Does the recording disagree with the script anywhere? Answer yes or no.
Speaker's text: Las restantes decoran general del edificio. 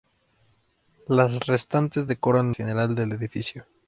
no